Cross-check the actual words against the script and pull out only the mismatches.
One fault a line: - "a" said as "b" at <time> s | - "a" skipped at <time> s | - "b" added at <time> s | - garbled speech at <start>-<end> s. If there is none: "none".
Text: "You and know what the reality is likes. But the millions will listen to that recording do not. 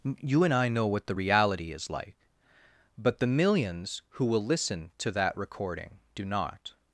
- "I" added at 0.5 s
- "likes" said as "like" at 1.9 s
- "who" added at 4.1 s